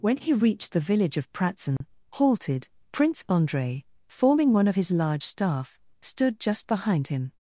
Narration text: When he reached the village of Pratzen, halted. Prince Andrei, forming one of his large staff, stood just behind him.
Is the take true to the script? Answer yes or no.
yes